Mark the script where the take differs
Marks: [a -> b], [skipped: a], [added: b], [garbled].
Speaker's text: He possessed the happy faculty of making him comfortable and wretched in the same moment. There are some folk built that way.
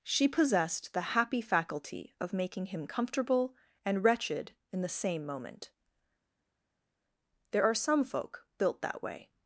[He -> She] possessed the happy faculty of making him comfortable and wretched in the same moment. There are some folk built that way.